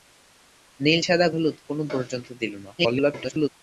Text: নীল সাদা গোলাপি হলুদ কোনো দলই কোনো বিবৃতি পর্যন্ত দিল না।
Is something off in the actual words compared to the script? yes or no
yes